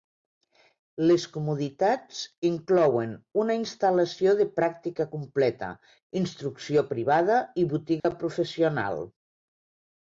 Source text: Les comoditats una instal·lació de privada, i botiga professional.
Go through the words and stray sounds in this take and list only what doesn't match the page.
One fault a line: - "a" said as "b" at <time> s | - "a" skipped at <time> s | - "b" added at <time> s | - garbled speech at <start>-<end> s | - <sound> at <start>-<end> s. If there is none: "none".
- "inclouen" added at 2.5 s
- "pràctica completa instrucció" added at 4.6 s
- dropout at 8.0-8.0 s